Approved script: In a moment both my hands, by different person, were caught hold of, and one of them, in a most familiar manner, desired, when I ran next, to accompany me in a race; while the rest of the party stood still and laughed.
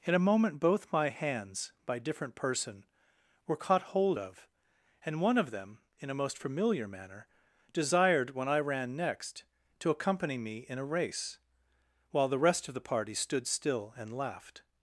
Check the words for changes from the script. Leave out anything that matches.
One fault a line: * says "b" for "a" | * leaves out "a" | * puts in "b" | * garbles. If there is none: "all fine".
all fine